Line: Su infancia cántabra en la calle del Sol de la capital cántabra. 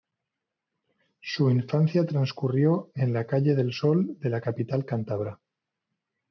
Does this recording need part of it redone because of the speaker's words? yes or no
yes